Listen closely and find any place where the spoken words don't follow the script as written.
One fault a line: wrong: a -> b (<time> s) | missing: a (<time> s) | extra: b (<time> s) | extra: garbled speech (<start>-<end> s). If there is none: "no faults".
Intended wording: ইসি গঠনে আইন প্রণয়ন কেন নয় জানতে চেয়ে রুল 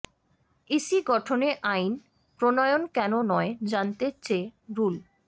no faults